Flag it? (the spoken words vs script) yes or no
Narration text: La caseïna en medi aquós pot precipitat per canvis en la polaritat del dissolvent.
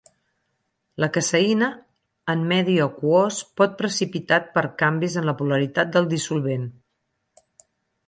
no